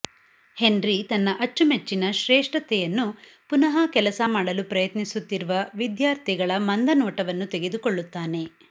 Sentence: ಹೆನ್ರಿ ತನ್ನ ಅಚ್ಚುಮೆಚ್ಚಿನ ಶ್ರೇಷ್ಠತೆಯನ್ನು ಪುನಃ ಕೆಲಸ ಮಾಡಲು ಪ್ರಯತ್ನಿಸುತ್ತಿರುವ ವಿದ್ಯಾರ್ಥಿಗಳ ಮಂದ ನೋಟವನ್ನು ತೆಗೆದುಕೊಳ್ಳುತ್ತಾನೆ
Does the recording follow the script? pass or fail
pass